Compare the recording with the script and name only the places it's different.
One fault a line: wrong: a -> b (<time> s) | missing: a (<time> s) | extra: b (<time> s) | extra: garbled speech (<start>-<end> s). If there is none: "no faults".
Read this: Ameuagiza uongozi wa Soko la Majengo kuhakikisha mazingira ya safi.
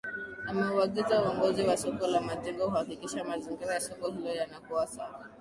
extra: soko hilo yanakuwa (3.8 s)